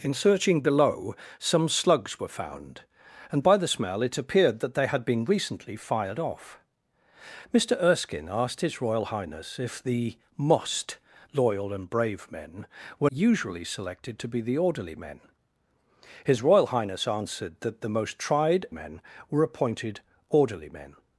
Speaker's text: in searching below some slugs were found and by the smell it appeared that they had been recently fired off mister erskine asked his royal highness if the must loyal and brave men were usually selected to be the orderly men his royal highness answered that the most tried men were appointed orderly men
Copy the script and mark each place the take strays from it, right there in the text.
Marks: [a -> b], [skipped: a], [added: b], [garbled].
in searching below some slugs were found and by the smell it appeared that they had been recently fired off mister erskine asked his royal highness if the must loyal and brave men were usually selected to be the orderly men his royal highness answered that the most tried men were appointed orderly men